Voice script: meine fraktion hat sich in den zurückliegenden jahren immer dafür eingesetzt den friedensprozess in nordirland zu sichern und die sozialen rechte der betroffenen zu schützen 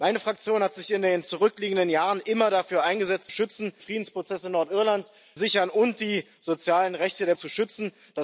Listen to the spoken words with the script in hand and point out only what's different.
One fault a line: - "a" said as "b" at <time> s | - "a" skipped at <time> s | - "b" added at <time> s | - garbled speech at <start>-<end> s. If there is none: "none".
- "den" said as "schützen" at 3.3 s
- "zu" skipped at 5.1 s
- "betroffenen" skipped at 7.4 s